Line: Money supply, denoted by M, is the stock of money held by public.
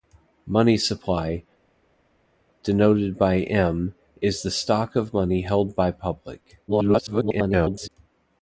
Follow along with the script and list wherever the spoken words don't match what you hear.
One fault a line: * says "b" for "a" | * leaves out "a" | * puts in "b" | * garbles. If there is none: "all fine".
* garbles